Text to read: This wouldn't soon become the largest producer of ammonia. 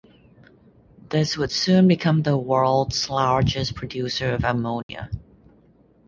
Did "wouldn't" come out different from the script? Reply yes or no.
yes